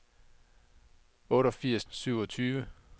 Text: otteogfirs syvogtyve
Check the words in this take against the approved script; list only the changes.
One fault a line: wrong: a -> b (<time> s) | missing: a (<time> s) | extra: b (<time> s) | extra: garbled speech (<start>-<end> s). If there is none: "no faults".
no faults